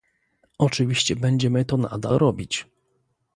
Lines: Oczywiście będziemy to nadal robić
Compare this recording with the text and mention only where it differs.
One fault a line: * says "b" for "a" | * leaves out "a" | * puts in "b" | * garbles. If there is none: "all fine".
all fine